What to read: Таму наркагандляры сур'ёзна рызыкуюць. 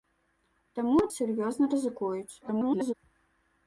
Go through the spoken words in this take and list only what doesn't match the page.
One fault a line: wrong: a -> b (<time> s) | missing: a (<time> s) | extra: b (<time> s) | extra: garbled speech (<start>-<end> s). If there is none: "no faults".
missing: наркагандляры (1.0 s)
extra: garbled speech (2.4-2.9 s)